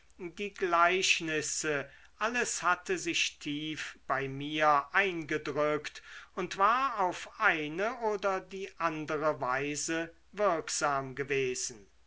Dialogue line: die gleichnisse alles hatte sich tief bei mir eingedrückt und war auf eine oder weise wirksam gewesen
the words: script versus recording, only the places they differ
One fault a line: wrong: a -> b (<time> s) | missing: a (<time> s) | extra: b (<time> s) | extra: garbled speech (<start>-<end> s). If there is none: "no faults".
extra: die andere (8.4 s)